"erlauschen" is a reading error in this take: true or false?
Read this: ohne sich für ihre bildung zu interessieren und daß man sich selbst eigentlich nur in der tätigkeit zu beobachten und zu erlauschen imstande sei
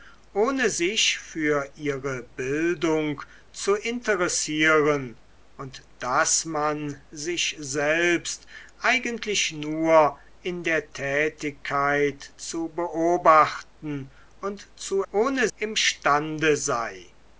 true